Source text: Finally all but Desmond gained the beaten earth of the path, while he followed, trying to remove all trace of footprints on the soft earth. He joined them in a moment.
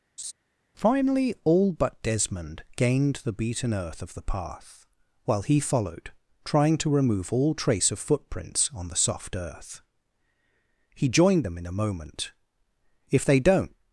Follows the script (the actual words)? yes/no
no